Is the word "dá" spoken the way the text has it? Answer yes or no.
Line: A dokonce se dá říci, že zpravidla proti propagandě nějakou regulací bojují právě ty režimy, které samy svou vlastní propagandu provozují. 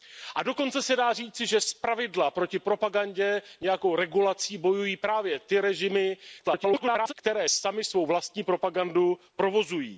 yes